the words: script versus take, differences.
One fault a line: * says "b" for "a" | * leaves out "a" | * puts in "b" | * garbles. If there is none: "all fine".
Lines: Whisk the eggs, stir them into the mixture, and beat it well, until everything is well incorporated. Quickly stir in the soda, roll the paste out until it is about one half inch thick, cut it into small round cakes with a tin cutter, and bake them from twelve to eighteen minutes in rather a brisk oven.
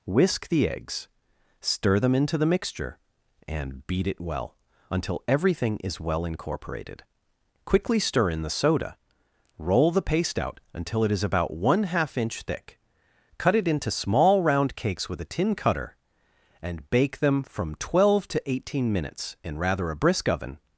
all fine